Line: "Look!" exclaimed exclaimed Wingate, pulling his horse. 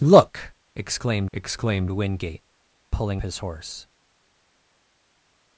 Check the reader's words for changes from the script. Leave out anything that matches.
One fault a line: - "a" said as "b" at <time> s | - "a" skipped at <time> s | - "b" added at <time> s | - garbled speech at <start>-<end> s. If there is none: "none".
none